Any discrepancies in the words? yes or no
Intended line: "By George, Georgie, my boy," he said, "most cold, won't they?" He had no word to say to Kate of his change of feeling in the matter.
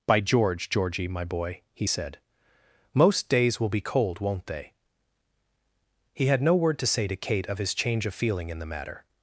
yes